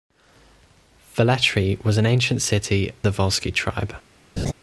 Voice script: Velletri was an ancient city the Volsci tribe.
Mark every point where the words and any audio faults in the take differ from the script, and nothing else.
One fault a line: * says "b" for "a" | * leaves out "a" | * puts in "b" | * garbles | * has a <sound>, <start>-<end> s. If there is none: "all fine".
* has a laugh, 4.4-4.5 s